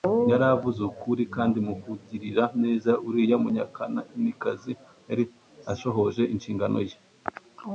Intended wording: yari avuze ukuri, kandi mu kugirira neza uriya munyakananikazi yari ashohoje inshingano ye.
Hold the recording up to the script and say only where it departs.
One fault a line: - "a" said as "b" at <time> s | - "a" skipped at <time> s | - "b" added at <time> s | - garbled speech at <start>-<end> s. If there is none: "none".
none